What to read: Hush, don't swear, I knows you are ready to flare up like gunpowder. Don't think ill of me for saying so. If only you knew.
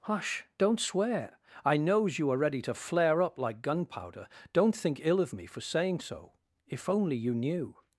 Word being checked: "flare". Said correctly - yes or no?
yes